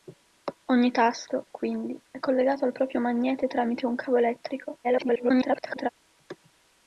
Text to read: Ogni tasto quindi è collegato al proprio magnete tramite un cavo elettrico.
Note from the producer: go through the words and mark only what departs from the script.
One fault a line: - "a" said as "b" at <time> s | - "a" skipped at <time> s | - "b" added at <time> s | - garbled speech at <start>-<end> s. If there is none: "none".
- garbled speech at 4.8-5.9 s